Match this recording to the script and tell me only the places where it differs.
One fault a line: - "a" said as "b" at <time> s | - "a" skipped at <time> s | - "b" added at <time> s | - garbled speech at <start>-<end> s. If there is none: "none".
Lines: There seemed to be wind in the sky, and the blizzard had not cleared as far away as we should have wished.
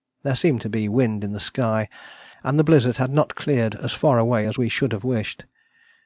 none